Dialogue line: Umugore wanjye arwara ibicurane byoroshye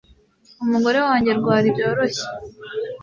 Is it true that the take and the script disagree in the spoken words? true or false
true